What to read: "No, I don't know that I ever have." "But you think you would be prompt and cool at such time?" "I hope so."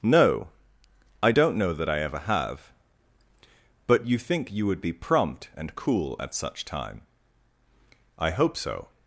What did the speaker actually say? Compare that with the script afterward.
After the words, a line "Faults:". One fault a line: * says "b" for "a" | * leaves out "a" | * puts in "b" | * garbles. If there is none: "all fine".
"No, I don't know that I ever have." "But you think you would be prompt and cool at such time?" "I hope so."
Faults:
all fine